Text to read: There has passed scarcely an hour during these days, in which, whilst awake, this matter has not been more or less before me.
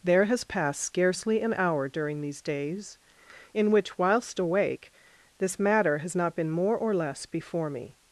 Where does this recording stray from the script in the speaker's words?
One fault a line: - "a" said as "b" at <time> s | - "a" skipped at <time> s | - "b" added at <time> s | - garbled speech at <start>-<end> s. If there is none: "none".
none